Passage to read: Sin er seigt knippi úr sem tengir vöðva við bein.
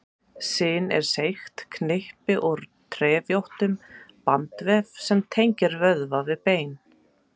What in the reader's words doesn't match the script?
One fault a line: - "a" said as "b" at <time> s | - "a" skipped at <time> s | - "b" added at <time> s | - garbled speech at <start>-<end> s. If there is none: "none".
- "trefjóttum bandvef" added at 3.0 s